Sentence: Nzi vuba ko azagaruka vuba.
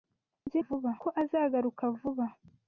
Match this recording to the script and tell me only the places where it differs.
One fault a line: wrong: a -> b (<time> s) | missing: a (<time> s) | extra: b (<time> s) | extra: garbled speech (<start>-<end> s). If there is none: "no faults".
no faults